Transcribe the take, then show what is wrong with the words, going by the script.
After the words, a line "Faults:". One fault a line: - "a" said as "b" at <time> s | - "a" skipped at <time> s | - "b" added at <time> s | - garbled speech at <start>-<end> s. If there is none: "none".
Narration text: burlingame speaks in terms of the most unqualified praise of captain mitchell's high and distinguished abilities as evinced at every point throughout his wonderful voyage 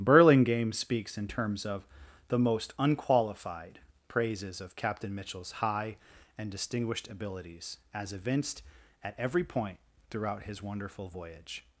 burlingame speaks in terms of the most unqualified praises of captain mitchell's high and distinguished abilities as evinced at every point throughout his wonderful voyage
Faults:
- "praise" said as "praises" at 4.1 s